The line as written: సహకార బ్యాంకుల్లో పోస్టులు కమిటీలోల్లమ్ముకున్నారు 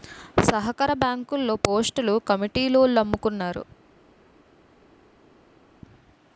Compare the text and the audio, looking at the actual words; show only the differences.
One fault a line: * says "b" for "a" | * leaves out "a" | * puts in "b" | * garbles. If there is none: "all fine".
all fine